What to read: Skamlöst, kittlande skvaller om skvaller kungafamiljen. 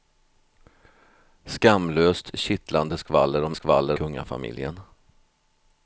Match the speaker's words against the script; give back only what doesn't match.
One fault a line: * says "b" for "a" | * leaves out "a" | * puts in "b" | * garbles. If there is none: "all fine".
all fine